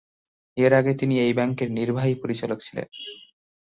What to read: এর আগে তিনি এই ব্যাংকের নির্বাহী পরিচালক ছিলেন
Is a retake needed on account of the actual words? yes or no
no